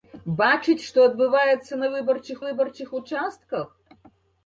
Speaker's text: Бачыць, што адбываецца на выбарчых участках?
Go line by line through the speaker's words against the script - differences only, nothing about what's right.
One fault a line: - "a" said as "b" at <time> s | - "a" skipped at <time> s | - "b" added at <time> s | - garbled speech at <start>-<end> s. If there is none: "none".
- "выбарчых" added at 2.5 s